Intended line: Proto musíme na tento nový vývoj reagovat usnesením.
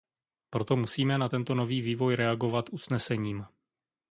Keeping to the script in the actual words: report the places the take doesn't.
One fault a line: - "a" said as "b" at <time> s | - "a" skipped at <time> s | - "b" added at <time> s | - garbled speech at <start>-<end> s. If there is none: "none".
none